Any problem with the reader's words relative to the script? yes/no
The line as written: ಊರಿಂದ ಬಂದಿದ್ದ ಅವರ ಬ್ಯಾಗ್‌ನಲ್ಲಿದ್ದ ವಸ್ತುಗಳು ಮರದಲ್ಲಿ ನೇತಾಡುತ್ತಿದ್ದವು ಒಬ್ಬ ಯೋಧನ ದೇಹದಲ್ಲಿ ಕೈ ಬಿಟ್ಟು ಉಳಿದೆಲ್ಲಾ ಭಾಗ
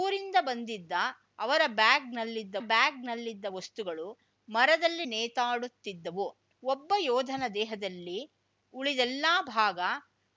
yes